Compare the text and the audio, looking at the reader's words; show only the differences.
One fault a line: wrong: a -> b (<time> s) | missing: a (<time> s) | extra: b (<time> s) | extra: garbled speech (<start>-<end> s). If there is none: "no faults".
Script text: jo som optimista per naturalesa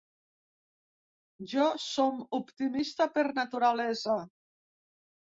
no faults